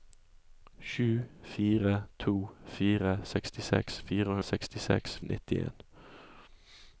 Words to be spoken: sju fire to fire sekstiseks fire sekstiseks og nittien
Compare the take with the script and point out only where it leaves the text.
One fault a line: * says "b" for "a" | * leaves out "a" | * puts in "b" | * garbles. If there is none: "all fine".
all fine